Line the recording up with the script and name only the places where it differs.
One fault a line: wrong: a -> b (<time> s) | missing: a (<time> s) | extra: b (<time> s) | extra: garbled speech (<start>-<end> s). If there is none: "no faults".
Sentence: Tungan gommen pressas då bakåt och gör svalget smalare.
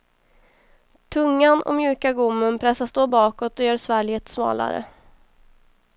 extra: och mjuka (1.6 s)